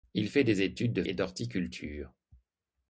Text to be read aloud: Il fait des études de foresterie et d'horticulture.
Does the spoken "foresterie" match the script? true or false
false